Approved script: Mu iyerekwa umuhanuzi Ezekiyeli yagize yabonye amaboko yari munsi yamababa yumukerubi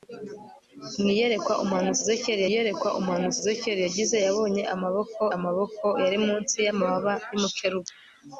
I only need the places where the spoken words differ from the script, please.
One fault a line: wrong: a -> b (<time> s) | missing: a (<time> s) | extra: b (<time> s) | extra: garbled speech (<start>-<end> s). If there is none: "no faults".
extra: iyerekwa umuhanuzi Ezekiyeli (2.5 s)
extra: amaboko (5.3 s)